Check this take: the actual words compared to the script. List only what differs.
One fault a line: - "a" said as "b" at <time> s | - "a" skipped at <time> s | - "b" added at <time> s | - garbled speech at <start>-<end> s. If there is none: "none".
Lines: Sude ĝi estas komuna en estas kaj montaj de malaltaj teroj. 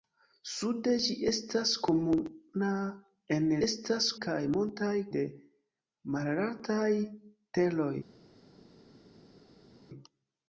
none